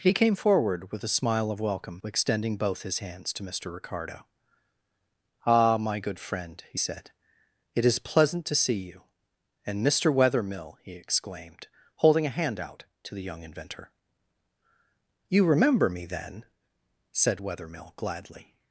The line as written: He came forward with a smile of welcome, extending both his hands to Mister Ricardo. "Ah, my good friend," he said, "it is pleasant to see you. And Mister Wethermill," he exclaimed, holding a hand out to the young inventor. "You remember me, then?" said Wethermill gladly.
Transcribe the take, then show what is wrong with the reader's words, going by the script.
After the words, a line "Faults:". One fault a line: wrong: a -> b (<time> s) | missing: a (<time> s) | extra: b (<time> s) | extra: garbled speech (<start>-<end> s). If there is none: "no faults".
He came forward with a smile of welcome, extending both his hands to Mister Ricardo. "Ah, my good friend," he said, "it is pleasant to see you. And Mister Wethermill," he exclaimed, holding a hand out to the young inventor. "You remember me, then?" said Wethermill gladly.
Faults:
no faults